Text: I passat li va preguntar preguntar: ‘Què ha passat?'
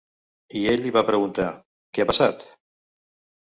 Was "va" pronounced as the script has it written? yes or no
yes